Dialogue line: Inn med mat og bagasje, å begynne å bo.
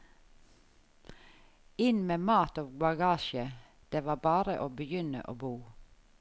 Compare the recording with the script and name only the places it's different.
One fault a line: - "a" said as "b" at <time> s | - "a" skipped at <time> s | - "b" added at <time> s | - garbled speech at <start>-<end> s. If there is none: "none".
- "det var bare" added at 3.9 s